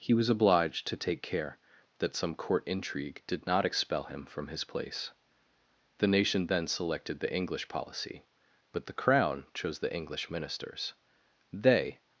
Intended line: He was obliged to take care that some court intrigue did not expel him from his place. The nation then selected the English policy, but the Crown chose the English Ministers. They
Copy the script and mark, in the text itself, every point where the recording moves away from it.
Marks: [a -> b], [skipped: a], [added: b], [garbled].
He was obliged to take care that some court intrigue did not expel him from his place. The nation then selected the English policy, but the Crown chose the English Ministers. They